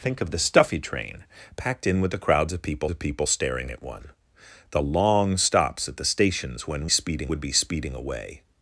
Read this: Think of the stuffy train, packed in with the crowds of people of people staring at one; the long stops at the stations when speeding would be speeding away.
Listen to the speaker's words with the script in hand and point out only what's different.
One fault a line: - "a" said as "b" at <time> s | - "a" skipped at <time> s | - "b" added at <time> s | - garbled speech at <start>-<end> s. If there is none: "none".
none